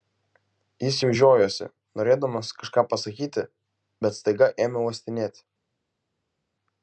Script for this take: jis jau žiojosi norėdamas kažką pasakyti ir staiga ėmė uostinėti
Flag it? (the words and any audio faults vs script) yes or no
yes